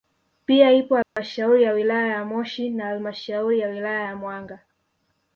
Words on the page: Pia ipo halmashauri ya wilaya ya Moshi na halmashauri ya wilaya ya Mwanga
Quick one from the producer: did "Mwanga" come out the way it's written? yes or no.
yes